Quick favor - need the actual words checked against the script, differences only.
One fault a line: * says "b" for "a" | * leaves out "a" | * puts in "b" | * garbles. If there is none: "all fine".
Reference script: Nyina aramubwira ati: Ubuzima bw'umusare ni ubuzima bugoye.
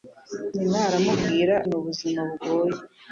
* leaves out "ati Ubuzima bw'umusare"